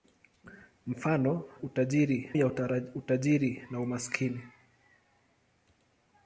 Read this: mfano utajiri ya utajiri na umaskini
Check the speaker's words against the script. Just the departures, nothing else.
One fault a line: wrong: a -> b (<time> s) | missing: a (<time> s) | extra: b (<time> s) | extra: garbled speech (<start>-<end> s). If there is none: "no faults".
no faults